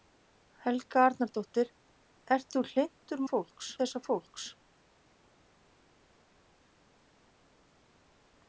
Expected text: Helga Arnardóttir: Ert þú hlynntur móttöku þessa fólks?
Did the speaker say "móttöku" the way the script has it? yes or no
no